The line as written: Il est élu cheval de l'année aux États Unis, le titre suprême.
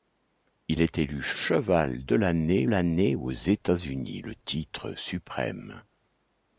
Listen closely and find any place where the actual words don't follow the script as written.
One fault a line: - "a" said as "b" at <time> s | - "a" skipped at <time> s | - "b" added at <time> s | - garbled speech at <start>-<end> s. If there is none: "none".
- "l'année" added at 2.7 s